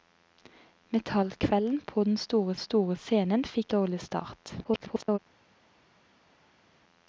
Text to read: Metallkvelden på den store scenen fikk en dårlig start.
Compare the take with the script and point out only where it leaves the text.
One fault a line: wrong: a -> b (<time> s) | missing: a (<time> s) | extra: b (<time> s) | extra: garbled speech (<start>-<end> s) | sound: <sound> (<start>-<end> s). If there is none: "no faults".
extra: store (2.6 s)
missing: en (3.7 s)
extra: garbled speech (4.6-5.2 s)